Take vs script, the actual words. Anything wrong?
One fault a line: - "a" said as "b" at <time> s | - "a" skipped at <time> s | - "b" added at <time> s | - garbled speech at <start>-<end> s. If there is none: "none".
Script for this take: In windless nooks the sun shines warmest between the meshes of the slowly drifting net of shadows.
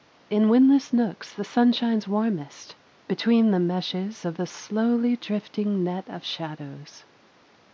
none